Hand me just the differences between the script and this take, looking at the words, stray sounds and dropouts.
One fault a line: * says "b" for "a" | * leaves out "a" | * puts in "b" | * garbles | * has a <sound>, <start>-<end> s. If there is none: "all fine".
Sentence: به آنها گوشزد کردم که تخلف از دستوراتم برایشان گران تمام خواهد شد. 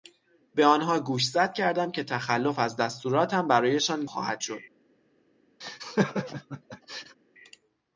* leaves out "گران تمام"
* has a laugh, 5.6-7.2 s